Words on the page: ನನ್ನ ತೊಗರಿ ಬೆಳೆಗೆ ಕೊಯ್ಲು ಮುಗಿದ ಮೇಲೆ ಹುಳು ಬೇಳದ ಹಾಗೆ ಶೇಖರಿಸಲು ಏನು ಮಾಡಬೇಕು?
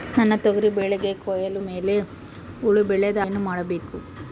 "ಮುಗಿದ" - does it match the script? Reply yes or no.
no